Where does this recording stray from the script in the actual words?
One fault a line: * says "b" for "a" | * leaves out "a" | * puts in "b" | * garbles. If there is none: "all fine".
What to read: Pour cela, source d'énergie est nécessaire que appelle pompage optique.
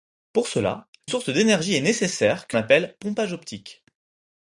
all fine